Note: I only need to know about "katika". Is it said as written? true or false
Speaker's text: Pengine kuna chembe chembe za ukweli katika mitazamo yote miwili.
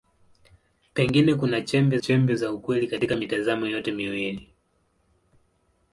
true